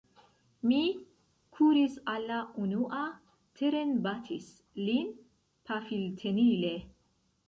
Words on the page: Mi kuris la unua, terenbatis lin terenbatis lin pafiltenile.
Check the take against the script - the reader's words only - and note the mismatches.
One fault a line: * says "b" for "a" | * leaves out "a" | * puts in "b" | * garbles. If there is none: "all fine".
* puts in "al"
* leaves out "terenbatis lin"